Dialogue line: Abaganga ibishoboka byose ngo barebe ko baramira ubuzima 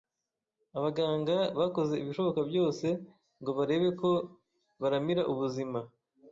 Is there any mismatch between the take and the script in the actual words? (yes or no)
yes